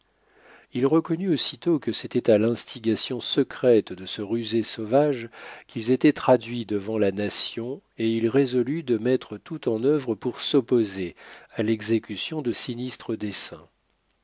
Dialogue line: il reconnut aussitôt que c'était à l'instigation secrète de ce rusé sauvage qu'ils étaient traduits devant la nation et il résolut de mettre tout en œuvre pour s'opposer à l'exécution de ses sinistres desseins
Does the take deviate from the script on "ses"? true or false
true